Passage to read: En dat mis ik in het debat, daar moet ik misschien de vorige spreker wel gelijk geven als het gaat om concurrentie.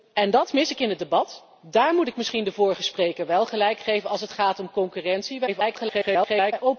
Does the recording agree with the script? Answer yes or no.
no